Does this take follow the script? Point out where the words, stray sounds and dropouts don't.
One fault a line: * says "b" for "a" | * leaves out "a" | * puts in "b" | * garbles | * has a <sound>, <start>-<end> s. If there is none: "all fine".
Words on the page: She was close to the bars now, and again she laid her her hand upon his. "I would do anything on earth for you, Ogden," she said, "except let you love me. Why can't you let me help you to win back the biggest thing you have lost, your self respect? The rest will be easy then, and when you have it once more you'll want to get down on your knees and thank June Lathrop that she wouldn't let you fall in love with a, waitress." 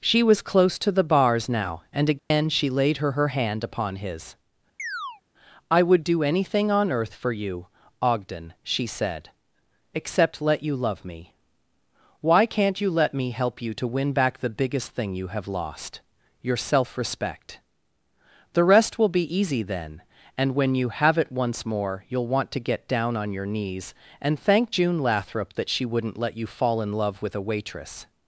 * has a dropout, 2.2-2.3 s
* has a chirp, 4.8-5.2 s